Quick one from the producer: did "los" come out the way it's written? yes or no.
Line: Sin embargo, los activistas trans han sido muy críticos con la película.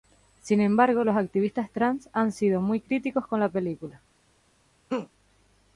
yes